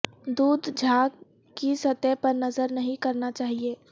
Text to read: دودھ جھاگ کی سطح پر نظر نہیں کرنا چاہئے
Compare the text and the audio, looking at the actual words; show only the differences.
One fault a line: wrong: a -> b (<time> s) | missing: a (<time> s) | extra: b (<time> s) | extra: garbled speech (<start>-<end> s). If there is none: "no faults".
no faults